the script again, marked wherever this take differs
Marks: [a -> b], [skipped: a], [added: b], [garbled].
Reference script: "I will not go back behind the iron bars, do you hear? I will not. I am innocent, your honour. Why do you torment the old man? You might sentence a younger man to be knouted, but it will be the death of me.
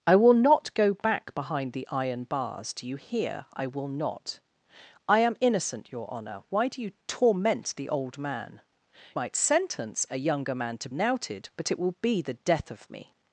"I will not go back behind the iron bars, do you hear? I will not. I am innocent, your honour. Why do you torment the old man? [skipped: You] might sentence a younger man to [skipped: be] knouted, but it will be the death of me.